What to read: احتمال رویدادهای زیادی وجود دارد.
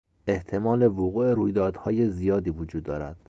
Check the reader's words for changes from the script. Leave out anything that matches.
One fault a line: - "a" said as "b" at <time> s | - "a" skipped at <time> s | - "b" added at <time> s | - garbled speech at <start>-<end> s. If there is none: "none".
- "وقوع" added at 0.9 s